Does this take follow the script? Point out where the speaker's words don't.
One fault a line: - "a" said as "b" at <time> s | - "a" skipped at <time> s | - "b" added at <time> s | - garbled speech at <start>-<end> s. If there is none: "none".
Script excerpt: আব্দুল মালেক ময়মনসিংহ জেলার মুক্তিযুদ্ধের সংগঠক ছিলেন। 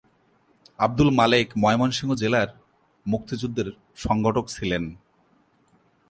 none